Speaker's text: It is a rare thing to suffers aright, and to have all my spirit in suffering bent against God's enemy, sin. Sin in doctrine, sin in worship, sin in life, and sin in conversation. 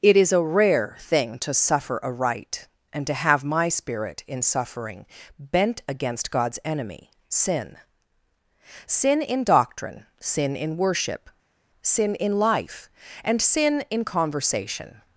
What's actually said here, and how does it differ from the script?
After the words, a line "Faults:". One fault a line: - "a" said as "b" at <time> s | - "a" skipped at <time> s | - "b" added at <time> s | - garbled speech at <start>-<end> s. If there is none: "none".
It is a rare thing to suffer aright, and to have my spirit in suffering bent against God's enemy, sin. Sin in doctrine, sin in worship, sin in life, and sin in conversation.
Faults:
- "suffers" said as "suffer" at 1.5 s
- "all" skipped at 3.4 s